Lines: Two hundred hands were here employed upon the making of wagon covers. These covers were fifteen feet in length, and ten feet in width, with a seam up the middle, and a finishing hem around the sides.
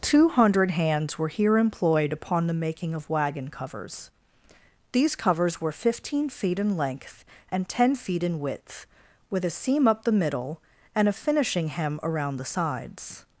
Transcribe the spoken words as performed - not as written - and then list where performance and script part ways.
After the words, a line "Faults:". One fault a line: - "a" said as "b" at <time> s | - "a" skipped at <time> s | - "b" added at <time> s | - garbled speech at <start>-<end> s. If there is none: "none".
Two hundred hands were here employed upon the making of wagon covers. These covers were fifteen feet in length, and ten feet in width, with a seam up the middle, and a finishing hem around the sides.
Faults:
none